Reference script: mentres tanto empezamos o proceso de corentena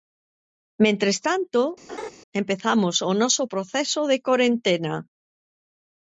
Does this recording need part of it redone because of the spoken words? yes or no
yes